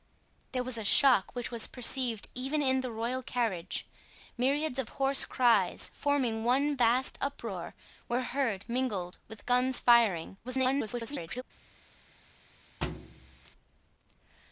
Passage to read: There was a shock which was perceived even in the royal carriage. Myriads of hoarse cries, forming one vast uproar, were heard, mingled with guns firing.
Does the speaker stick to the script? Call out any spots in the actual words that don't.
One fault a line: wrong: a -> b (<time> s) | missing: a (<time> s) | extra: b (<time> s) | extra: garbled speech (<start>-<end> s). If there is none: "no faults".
extra: garbled speech (10.4-11.4 s)